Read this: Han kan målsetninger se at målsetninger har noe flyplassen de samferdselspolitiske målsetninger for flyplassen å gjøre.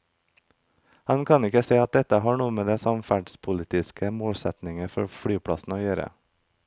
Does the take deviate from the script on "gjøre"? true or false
false